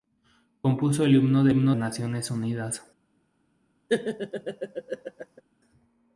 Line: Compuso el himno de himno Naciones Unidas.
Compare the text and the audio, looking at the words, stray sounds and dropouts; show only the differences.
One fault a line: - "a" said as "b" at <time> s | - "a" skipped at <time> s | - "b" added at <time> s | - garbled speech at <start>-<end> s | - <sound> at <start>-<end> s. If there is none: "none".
- laugh at 3.9-5.4 s